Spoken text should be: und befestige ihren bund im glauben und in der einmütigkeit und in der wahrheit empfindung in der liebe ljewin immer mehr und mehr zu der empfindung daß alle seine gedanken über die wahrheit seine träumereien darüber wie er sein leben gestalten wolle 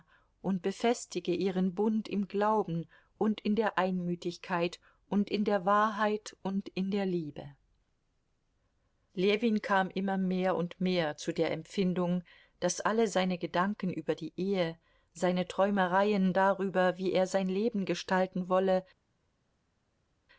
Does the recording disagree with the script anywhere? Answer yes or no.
yes